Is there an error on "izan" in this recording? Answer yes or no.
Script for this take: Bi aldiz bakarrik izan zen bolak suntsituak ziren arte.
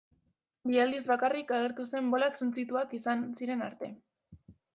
yes